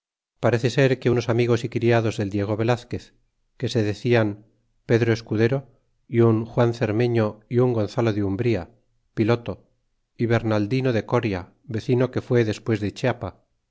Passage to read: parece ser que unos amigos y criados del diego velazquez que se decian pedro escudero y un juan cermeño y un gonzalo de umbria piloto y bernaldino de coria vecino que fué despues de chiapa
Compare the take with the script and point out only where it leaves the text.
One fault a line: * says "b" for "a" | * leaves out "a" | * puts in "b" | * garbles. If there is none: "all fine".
all fine